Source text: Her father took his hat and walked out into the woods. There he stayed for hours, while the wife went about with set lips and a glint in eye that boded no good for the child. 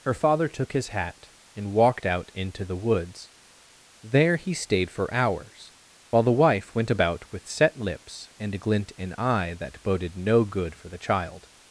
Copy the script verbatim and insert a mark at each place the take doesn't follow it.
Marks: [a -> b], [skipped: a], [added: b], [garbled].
Her father took his hat and walked out into the woods. There he stayed for hours, while the wife went about with set lips and a glint in eye that boded no good for the child.